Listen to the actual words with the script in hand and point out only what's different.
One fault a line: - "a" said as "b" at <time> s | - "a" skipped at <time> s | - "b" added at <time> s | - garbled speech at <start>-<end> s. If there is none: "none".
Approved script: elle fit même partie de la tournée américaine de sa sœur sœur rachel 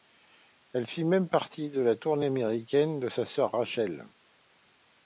- "sœur" skipped at 3.5 s